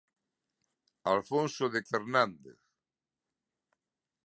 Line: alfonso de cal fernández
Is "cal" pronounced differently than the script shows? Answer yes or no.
yes